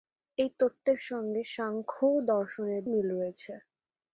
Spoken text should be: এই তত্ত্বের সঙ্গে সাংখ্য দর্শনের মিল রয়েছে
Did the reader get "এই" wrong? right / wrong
right